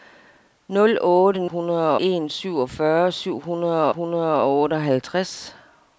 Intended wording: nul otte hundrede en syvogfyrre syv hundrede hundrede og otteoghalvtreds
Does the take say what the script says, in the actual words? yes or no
yes